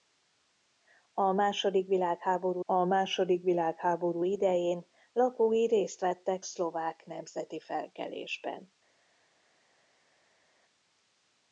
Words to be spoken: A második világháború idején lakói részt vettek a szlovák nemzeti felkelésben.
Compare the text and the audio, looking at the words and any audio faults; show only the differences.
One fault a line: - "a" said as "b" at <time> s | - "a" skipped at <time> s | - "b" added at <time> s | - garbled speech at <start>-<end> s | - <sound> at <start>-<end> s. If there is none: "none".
- "a második világháború" added at 2.6 s
- "a" skipped at 6.5 s